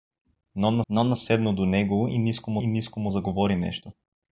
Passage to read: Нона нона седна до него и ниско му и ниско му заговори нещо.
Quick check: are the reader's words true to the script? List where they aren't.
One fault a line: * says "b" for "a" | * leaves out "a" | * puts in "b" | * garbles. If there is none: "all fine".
all fine